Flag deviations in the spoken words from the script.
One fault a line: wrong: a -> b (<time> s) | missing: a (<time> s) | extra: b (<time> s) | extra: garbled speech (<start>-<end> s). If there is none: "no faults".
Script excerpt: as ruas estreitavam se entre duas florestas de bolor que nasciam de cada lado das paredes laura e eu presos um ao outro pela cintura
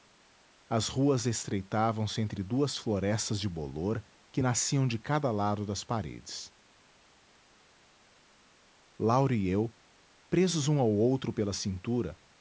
no faults